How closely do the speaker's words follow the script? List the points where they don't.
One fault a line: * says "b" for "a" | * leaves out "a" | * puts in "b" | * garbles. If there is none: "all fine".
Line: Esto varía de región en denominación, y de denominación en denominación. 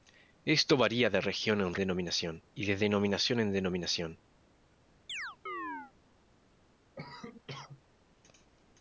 all fine